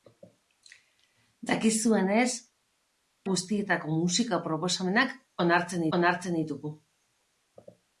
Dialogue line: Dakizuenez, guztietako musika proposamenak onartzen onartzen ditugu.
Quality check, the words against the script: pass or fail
pass